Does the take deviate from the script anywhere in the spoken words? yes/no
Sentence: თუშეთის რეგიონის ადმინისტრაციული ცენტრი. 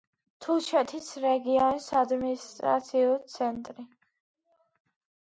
no